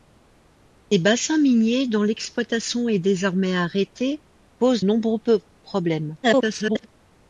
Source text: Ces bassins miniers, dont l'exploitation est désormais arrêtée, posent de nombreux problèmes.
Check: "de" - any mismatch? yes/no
yes